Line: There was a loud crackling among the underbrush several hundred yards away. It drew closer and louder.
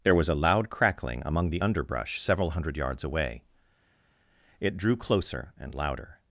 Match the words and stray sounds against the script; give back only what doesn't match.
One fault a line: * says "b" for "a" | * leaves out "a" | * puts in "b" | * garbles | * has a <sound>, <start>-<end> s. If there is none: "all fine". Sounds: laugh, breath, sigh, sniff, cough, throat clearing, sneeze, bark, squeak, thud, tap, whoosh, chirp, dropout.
all fine